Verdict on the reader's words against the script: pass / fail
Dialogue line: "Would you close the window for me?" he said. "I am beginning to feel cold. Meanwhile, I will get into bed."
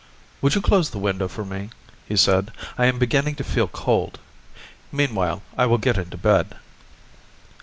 pass